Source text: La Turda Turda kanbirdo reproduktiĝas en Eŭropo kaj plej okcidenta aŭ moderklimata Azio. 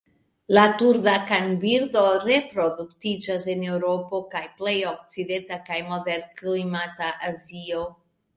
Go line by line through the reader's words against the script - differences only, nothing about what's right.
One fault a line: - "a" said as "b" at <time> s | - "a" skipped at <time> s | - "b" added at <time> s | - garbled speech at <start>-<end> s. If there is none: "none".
- "Turda" skipped at 1.1 s
- "aŭ" said as "kaj" at 5.7 s